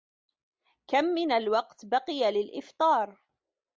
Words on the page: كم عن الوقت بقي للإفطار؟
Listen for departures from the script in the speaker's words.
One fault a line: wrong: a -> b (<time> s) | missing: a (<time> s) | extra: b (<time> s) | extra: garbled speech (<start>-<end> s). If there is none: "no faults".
wrong: عن -> من (1.1 s)